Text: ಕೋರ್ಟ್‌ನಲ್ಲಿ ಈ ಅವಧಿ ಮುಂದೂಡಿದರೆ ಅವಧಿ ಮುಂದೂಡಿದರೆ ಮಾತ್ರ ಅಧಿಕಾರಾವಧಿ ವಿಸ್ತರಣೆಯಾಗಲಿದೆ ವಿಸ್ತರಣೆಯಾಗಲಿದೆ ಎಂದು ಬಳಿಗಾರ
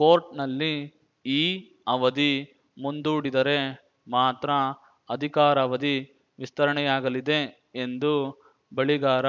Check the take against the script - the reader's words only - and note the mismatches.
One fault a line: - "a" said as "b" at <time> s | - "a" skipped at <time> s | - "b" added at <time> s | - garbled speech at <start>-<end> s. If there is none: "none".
- "ಅವಧಿ ಮುಂದೂಡಿದರೆ" skipped at 3.6 s
- "ವಿಸ್ತರಣೆಯಾಗಲಿದೆ" skipped at 7.4 s